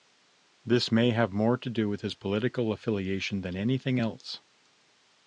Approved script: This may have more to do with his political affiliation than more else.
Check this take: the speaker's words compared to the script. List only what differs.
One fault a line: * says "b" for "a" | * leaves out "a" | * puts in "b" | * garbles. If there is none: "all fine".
* says "anything" for "more"